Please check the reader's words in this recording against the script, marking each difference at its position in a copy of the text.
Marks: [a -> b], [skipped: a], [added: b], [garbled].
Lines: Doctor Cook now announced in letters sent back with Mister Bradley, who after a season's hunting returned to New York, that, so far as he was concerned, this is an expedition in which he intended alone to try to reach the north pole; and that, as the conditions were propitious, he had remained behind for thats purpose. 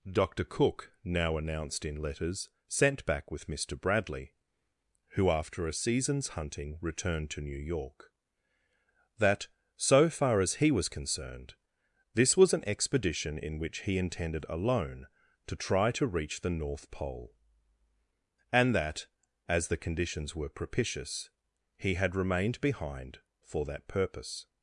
Doctor Cook now announced in letters sent back with Mister Bradley, who after a season's hunting returned to New York, that, so far as he was concerned, this [is -> was] an expedition in which he intended alone to try to reach the north pole; and that, as the conditions were propitious, he had remained behind for [thats -> that] purpose.